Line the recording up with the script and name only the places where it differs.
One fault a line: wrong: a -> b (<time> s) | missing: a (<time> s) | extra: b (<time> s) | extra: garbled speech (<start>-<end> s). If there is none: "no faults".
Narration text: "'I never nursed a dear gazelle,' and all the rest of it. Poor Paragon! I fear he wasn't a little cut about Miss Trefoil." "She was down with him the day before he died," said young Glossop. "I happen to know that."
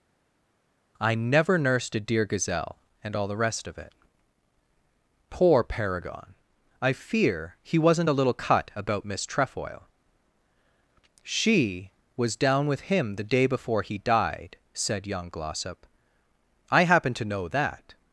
no faults